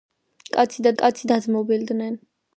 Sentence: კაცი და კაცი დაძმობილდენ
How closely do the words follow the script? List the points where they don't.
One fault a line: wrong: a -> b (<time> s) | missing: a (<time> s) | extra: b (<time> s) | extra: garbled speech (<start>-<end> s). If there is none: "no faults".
no faults